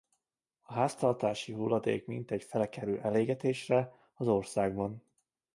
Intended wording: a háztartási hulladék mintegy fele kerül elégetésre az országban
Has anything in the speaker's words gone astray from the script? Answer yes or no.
no